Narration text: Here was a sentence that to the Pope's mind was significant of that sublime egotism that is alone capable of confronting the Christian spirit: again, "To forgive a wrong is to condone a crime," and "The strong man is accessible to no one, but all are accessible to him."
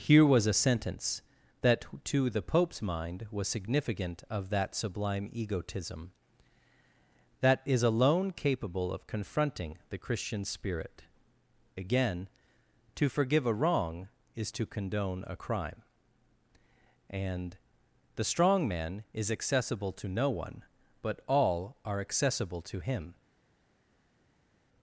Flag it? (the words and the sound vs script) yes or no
no